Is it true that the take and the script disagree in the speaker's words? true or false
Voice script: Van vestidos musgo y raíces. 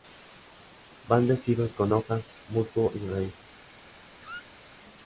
true